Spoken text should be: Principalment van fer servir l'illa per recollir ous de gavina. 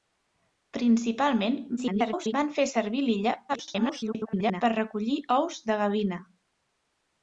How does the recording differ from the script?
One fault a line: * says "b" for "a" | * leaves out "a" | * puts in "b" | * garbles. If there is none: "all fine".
* garbles
* garbles